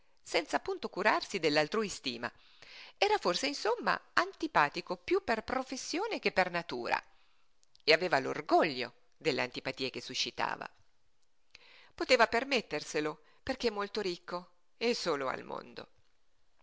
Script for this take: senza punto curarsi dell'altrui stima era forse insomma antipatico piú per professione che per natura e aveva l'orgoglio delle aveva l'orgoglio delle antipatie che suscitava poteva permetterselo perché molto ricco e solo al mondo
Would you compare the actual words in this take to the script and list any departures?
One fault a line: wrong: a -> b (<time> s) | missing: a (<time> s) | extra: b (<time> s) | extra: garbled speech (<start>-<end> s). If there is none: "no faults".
missing: aveva l'orgoglio delle (9.4 s)